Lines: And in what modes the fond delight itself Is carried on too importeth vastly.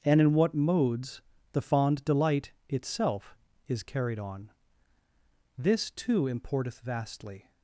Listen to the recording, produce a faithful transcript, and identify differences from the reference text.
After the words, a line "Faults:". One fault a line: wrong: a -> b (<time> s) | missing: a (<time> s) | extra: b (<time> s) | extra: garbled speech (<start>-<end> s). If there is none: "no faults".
And in what modes the fond delight itself Is carried on this too importeth vastly.
Faults:
extra: this (5.6 s)